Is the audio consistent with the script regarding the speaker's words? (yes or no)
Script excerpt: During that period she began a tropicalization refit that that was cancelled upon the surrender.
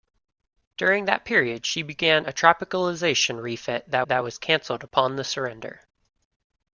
yes